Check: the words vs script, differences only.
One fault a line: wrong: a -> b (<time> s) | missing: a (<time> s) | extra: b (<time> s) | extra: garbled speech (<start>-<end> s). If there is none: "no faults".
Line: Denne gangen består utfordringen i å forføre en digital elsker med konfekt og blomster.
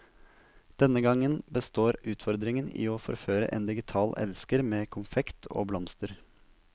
no faults